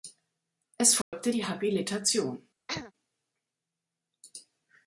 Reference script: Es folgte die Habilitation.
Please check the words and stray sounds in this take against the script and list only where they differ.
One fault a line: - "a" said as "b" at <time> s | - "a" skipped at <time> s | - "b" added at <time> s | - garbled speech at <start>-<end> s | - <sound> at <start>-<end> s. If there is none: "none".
- dropout at 1.0-1.1 s
- throat clearing at 2.7-2.9 s